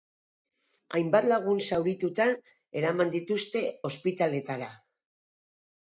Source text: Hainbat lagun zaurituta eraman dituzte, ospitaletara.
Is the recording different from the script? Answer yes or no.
no